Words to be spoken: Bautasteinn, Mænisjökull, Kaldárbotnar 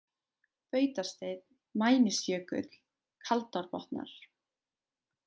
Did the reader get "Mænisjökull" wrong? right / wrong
right